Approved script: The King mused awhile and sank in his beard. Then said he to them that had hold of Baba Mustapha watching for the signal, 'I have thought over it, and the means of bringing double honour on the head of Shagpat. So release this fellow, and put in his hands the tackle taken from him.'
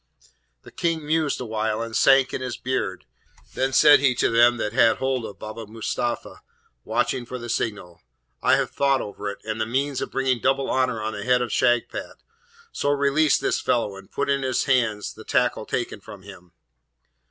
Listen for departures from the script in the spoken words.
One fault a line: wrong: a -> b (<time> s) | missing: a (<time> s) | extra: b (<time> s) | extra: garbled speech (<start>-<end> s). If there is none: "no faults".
no faults